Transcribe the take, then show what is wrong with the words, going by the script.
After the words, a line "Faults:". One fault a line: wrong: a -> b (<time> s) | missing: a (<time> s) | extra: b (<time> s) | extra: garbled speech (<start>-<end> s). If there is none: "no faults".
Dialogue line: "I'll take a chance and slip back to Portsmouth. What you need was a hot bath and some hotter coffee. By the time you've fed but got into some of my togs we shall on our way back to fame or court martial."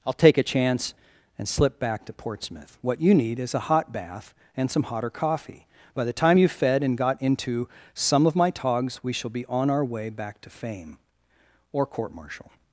"I'll take a chance and slip back to Portsmouth. What you need is a hot bath and some hotter coffee. By the time you've fed and got into some of my togs we shall be on our way back to fame or court martial."
Faults:
wrong: was -> is (3.4 s)
wrong: but -> and (6.8 s)
extra: be (9.3 s)